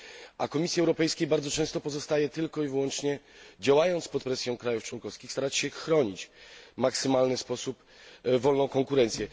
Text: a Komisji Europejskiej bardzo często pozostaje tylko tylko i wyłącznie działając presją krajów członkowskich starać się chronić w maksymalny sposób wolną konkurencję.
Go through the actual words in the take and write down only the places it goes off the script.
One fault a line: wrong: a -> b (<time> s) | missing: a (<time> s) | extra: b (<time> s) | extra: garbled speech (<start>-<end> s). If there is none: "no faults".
missing: tylko (2.6 s)
extra: pod (4.1 s)